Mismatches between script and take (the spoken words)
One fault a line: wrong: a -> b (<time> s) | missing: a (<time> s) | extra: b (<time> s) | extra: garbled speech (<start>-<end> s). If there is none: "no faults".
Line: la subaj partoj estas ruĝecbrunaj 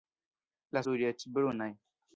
missing: subaj partoj estas (0.8 s)